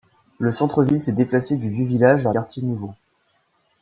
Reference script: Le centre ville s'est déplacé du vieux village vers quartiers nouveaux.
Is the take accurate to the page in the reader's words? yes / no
yes